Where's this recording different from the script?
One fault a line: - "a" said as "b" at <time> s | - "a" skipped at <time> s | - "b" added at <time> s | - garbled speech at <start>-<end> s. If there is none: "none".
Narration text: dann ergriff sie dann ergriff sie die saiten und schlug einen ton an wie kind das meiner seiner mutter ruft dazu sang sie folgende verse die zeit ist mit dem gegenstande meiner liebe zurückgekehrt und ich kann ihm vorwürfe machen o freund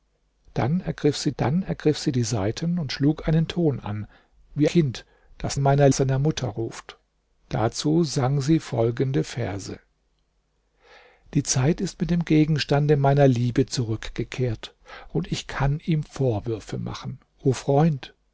none